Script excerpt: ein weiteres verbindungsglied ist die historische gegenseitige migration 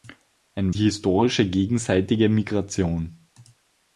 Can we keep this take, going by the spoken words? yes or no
no